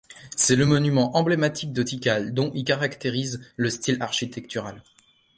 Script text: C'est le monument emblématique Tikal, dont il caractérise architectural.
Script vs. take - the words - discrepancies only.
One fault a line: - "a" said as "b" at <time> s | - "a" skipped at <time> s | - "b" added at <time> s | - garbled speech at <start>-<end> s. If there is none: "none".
- "de" added at 1.7 s
- "le style" added at 3.6 s